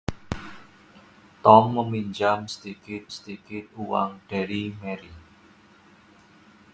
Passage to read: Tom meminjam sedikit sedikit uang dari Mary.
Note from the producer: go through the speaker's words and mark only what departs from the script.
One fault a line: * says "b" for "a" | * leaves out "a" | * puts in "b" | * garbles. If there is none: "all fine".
all fine